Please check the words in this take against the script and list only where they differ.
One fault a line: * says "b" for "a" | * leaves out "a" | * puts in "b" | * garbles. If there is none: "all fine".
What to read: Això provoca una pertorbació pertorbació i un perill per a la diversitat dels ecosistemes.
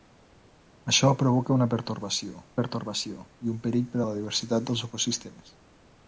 all fine